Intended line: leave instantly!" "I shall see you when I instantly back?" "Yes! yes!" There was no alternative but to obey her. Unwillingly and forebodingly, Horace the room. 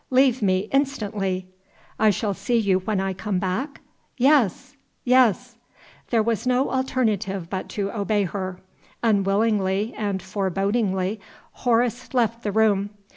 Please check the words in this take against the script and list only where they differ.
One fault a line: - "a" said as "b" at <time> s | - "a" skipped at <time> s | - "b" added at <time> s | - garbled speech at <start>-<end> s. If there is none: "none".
- "me" added at 0.4 s
- "instantly" said as "come" at 3.1 s
- "left" added at 12.2 s